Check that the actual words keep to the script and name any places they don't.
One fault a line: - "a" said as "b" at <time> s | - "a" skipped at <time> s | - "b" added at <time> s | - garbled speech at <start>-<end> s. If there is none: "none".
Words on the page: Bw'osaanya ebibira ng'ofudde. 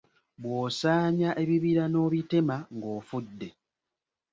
- "n'obitema" added at 1.9 s